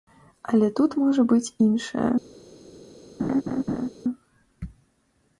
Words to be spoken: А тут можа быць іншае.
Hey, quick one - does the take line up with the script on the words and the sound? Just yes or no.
no